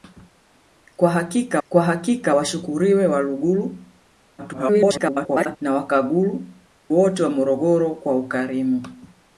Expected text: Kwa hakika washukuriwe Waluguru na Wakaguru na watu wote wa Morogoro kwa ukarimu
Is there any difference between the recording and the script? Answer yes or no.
yes